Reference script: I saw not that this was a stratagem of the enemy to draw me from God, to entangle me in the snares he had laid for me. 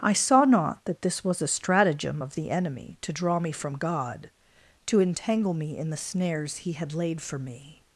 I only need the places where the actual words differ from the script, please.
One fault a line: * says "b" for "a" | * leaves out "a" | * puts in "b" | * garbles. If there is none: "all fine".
all fine